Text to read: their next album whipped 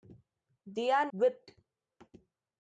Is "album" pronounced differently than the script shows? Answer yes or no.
yes